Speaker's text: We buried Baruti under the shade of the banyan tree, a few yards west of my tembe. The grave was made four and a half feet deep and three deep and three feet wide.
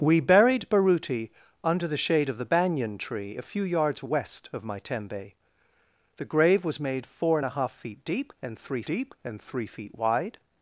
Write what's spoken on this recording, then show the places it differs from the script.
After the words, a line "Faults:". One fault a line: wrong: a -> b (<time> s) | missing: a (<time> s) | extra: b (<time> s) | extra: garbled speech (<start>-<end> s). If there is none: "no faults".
We buried Baruti under the shade of the banyan tree, a few yards west of my tembe. The grave was made four and a half feet deep and three deep and three feet wide.
Faults:
no faults